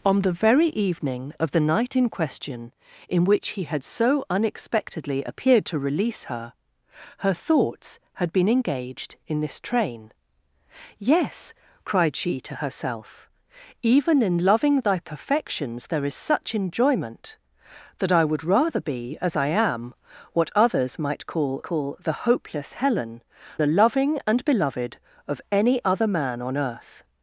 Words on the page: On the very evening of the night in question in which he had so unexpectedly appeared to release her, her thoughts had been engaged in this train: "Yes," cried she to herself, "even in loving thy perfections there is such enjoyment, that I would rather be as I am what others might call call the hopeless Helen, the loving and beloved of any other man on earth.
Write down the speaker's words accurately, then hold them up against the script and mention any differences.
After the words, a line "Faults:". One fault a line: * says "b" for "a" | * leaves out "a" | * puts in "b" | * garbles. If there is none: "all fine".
On the very evening of the night in question in which he had so unexpectedly appeared to release her, her thoughts had been engaged in this train: "Yes," cried she to herself, "even in loving thy perfections there is such enjoyment, that I would rather be as I am what others might call call the hopeless Helen, the loving and beloved of any other man on earth.
Faults:
all fine